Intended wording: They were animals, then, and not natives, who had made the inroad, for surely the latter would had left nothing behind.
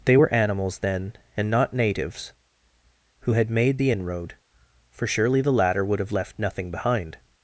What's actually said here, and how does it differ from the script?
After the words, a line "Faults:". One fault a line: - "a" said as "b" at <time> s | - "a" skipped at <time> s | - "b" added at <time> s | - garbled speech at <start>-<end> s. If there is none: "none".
They were animals, then, and not natives, who had made the inroad, for surely the latter would have left nothing behind.
Faults:
- "had" said as "have" at 6.0 s